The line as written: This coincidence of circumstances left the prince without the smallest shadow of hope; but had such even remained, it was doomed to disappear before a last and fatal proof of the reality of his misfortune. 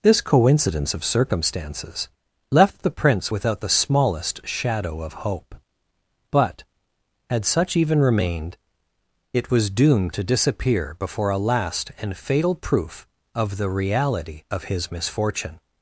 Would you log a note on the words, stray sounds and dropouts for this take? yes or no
no